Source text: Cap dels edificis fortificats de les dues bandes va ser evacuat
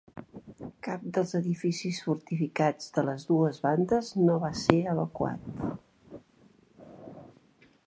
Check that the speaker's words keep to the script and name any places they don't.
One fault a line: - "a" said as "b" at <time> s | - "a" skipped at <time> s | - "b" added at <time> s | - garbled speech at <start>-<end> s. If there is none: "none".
- "no" added at 4.3 s